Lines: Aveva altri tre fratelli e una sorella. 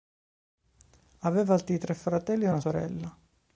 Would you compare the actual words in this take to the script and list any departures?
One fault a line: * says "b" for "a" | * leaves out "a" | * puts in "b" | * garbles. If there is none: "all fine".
all fine